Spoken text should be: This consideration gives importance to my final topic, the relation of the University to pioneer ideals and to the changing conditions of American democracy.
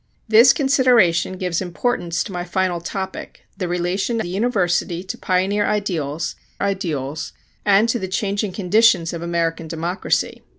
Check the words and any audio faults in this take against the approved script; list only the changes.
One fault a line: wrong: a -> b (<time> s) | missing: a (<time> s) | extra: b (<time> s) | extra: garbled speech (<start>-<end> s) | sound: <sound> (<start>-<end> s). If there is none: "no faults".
missing: of (4.2 s)
extra: ideals (6.6 s)